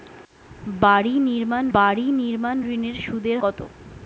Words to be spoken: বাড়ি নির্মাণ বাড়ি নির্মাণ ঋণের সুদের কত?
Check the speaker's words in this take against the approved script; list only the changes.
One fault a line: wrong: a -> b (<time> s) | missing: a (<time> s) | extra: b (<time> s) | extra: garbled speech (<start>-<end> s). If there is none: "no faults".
no faults